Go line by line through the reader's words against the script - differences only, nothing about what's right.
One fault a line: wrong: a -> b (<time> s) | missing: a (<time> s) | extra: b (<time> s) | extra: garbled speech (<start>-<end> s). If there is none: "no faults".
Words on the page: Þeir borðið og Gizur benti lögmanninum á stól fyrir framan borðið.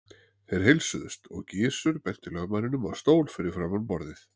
wrong: borðið -> heilsuðust (0.7 s)